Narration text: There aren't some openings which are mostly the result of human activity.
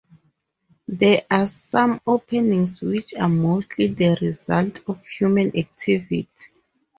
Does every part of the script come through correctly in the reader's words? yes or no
no